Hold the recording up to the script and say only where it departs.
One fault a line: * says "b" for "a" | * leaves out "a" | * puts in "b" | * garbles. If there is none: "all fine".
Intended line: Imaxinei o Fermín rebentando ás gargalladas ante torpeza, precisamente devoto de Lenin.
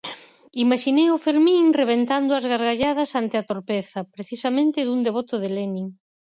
* puts in "a"
* puts in "dun"